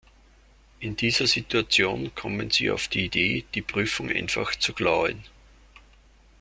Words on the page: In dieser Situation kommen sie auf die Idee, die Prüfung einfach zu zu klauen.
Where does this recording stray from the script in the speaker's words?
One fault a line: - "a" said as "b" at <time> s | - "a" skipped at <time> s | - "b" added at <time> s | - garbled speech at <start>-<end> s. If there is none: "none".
- "zu" skipped at 4.7 s